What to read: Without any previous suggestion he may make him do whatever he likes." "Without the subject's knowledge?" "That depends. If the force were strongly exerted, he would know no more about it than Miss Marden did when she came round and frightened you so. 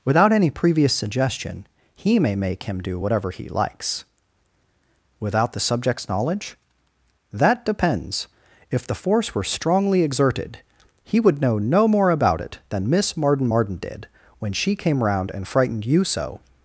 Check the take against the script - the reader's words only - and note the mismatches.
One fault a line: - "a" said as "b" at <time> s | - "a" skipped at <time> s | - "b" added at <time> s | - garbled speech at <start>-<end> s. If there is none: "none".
- "Marden" added at 13.5 s